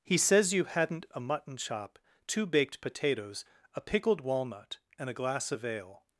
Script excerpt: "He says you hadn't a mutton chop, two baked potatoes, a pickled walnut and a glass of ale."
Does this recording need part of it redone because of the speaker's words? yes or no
no